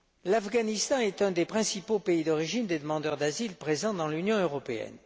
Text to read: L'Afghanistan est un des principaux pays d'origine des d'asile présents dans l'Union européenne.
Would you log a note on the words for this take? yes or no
yes